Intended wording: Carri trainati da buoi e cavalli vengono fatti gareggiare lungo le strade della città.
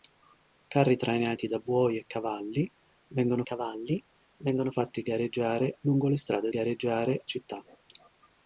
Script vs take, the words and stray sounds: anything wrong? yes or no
yes